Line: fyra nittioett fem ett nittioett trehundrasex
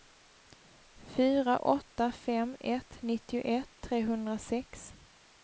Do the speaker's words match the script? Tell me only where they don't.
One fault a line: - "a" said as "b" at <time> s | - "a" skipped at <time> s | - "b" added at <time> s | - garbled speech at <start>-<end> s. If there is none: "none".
- "nittioett" said as "åtta" at 1.5 s